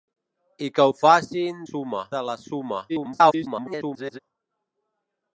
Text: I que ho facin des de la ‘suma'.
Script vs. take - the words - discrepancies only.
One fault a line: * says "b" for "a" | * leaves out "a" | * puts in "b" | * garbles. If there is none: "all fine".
* says "suma" for "des"
* garbles